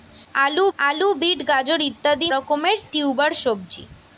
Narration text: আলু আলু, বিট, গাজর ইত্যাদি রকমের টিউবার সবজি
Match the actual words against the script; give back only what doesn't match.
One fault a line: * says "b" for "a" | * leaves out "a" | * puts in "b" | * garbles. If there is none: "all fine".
all fine